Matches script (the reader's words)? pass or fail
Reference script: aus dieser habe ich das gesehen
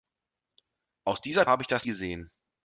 pass